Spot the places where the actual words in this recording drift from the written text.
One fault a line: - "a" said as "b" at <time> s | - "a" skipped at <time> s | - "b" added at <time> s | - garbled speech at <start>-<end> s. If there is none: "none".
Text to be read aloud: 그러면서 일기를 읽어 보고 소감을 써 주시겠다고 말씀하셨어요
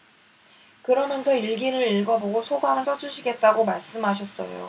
none